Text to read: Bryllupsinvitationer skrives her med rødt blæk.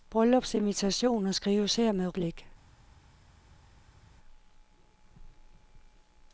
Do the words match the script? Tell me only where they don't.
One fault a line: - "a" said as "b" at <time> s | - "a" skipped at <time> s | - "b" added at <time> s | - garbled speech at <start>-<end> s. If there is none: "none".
- "rødt" skipped at 2.1 s